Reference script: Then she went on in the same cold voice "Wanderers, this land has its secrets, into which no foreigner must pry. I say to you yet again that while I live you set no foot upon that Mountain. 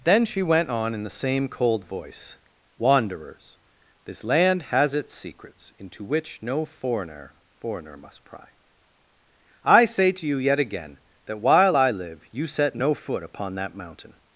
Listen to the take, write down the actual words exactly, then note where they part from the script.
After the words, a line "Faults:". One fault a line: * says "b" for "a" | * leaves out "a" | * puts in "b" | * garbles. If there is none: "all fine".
Then she went on in the same cold voice "Wanderers, this land has its secrets, into which no foreigner foreigner must pry. I say to you yet again that while I live you set no foot upon that Mountain.
Faults:
* puts in "foreigner"